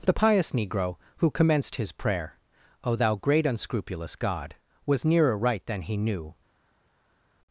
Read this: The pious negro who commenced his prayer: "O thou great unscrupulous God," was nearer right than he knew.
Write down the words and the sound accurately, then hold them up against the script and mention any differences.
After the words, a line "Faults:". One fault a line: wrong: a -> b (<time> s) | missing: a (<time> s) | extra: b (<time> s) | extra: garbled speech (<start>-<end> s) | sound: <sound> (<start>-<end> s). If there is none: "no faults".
The pious negro who commenced his prayer: "O thou great unscrupulous God," was nearer right than he knew.
Faults:
no faults